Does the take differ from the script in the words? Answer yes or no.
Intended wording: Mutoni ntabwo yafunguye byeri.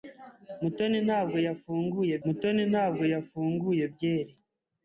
yes